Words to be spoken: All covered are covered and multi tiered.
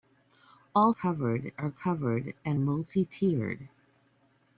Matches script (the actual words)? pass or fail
pass